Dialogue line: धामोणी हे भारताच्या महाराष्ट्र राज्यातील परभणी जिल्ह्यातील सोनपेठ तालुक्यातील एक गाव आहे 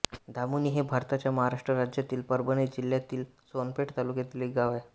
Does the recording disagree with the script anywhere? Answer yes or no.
no